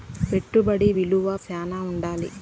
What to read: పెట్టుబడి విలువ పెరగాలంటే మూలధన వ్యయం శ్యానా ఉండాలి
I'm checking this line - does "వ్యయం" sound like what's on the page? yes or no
no